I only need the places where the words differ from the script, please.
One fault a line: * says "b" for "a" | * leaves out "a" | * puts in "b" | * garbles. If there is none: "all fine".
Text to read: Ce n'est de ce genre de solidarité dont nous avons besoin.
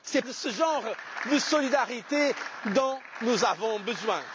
all fine